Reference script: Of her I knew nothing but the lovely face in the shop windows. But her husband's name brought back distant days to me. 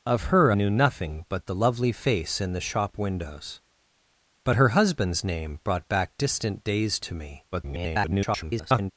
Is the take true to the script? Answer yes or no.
no